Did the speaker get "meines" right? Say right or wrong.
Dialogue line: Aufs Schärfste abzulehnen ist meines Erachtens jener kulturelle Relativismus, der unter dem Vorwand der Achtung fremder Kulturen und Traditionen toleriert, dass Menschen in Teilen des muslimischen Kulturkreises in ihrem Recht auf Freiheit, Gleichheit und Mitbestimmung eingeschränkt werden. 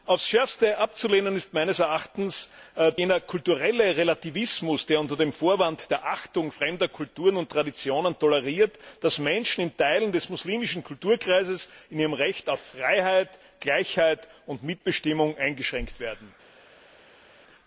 right